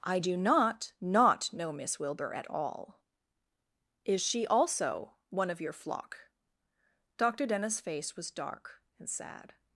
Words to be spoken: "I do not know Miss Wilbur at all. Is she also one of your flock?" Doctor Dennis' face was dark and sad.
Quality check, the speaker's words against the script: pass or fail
fail